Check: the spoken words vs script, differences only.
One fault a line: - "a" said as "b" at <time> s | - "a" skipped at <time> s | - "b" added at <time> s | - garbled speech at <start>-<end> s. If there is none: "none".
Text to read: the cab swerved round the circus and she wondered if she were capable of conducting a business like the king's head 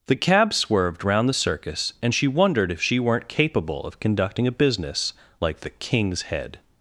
- "were" said as "weren't" at 3.0 s